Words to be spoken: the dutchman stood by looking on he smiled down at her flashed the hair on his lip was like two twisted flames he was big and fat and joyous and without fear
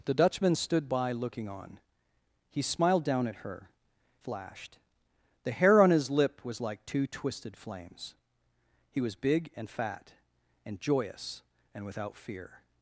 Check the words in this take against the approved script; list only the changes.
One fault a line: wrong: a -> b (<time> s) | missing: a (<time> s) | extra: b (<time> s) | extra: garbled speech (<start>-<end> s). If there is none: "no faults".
no faults